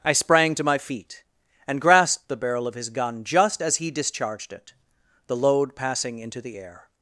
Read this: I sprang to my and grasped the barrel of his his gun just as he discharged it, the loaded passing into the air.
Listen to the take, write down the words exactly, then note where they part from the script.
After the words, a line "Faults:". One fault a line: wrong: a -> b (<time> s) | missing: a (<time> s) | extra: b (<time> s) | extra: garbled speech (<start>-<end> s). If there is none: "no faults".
I sprang to my feet, and grasped the barrel of his gun just as he discharged it, the load passing into the air.
Faults:
extra: feet (0.8 s)
missing: his (2.9 s)
wrong: loaded -> load (5.4 s)